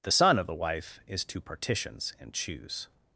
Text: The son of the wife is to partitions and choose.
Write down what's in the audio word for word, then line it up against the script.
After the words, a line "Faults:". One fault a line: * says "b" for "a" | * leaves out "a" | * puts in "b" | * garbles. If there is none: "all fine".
The son of the wife is to partitions and choose.
Faults:
all fine